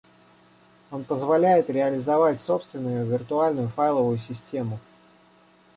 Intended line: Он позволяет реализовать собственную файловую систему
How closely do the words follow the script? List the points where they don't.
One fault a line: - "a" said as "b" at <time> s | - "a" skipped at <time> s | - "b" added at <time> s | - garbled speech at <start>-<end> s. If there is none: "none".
- "виртуальную" added at 3.0 s